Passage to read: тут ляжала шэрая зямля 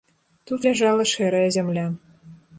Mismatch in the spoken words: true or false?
false